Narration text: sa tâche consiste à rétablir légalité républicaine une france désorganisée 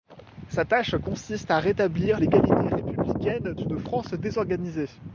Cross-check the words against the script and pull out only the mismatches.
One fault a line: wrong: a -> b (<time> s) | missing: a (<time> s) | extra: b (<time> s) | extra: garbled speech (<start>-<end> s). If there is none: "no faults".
no faults